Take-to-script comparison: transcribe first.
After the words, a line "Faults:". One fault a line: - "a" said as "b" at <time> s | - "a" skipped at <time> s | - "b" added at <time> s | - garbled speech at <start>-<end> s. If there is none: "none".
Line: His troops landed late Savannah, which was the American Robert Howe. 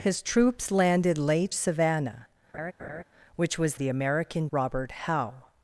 His troops landed late Savannah, which was the American Robert Howe.
Faults:
none